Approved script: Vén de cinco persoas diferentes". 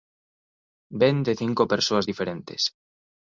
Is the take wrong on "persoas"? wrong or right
right